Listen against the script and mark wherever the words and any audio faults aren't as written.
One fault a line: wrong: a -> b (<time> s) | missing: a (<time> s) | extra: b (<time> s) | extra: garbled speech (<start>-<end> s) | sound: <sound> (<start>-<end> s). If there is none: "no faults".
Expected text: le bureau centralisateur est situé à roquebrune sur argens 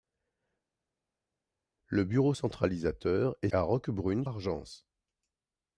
missing: situé (3.5 s)
missing: sur (4.3 s)